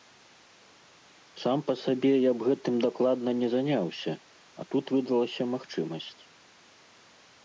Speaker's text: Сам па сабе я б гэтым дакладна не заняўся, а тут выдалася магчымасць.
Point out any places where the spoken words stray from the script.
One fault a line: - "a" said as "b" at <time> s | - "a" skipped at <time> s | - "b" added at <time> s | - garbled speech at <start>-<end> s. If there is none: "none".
none